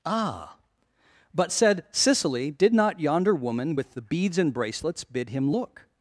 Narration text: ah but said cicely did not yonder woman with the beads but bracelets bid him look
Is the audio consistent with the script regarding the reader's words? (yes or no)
no